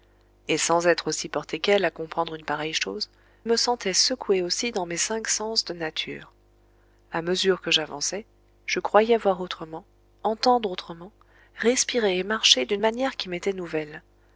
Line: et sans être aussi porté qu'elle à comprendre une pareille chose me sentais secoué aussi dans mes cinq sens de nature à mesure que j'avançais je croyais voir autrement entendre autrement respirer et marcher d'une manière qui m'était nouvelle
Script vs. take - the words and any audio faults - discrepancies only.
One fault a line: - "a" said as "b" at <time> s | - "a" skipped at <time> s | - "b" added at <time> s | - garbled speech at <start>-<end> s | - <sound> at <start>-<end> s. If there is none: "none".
none